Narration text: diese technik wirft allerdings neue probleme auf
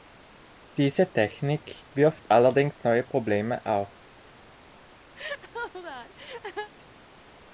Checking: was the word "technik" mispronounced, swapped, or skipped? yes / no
no